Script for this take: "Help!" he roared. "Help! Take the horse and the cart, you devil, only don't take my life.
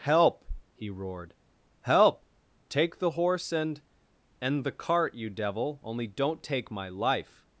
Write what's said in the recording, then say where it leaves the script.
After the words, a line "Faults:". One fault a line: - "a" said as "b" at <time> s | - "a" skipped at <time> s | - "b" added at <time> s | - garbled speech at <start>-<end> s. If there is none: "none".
"Help!" he roared. "Help! Take the horse and and the cart, you devil, only don't take my life.
Faults:
- "and" added at 4.4 s